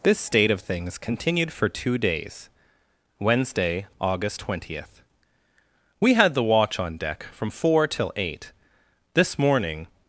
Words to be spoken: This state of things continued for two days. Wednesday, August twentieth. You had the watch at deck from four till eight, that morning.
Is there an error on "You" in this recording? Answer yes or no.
yes